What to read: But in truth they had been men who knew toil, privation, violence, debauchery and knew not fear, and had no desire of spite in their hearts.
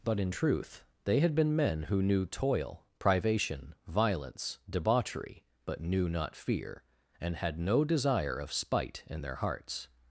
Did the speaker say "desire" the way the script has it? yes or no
yes